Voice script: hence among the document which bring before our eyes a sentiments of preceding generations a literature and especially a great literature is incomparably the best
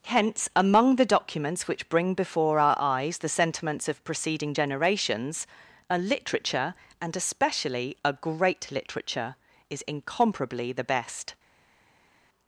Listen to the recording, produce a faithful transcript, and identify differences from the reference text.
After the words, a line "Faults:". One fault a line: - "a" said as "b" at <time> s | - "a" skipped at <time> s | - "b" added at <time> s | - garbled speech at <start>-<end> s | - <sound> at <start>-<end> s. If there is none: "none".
hence among the documents which bring before our eyes the sentiments of preceding generations a literature and especially a great literature is incomparably the best
Faults:
- "document" said as "documents" at 1.1 s
- "a" said as "the" at 3.2 s